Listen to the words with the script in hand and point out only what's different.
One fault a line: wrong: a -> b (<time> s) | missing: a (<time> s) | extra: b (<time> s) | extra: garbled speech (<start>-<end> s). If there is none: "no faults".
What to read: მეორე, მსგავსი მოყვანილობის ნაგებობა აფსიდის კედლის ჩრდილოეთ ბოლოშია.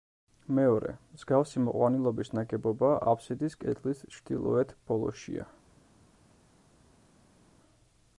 no faults